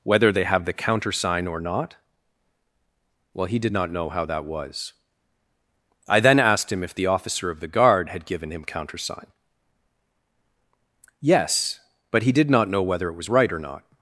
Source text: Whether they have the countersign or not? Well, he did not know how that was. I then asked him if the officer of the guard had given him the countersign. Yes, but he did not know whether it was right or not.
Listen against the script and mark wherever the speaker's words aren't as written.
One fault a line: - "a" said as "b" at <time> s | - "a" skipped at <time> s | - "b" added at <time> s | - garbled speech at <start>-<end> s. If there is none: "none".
- "the" skipped at 8.6 s